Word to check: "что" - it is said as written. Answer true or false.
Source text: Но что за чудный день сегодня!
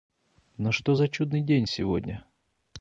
true